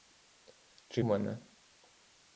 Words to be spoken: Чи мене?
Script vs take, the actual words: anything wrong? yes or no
no